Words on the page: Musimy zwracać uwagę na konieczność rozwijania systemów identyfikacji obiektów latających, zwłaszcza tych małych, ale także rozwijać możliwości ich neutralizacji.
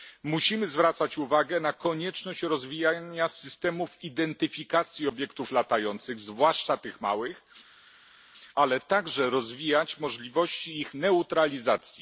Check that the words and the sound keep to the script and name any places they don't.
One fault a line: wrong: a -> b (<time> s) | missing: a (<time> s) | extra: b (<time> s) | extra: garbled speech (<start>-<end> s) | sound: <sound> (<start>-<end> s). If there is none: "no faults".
no faults